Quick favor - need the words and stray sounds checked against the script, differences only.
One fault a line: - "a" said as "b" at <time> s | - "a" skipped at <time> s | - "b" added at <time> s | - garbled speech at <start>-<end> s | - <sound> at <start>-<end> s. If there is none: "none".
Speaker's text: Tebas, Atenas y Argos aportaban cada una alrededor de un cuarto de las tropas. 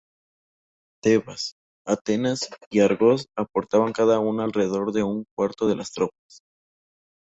none